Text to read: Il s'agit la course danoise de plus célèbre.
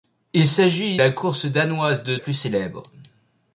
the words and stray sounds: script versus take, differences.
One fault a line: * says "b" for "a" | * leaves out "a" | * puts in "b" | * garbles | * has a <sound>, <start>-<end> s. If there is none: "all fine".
all fine